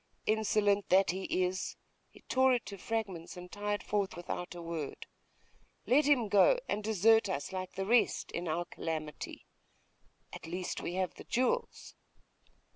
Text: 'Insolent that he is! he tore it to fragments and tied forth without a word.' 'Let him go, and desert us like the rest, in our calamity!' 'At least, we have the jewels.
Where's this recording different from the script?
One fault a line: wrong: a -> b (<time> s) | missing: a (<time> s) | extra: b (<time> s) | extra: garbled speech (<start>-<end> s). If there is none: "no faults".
no faults